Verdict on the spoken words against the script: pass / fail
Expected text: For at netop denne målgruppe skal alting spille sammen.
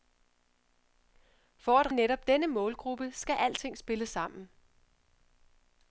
pass